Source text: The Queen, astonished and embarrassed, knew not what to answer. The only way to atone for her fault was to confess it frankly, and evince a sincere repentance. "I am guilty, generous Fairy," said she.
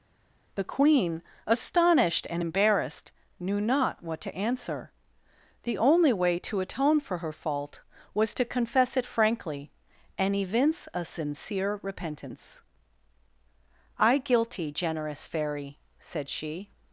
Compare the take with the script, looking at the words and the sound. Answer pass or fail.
fail